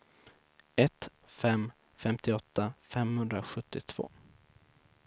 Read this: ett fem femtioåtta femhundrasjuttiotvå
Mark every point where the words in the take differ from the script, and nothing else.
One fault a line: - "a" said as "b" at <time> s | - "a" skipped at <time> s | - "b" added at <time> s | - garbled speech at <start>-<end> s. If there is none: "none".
none